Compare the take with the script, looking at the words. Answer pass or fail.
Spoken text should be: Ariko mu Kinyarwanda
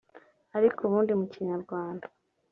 fail